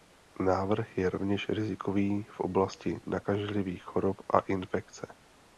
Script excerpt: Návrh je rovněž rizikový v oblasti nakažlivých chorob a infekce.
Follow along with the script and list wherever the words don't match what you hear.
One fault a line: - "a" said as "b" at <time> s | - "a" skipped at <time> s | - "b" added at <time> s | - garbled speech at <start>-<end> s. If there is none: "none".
none